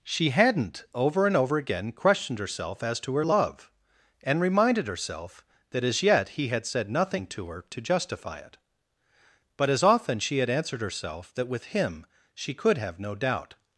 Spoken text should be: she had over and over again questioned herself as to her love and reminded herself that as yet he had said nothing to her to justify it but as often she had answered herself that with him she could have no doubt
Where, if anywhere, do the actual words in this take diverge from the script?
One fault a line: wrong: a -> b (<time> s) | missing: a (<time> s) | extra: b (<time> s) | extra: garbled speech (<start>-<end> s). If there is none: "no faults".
wrong: had -> hadn't (0.3 s)